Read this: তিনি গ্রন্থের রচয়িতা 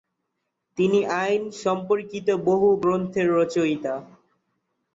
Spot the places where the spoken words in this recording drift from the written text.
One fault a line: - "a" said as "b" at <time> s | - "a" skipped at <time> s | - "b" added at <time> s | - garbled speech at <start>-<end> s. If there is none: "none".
- "আইন সম্পর্কিত বহু" added at 1.2 s